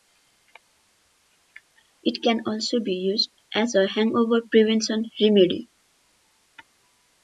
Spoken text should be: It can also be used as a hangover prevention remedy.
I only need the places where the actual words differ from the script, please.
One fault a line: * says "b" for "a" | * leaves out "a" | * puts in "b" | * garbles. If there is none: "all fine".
all fine